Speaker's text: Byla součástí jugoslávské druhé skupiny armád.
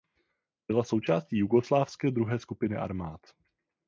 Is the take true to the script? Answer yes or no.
yes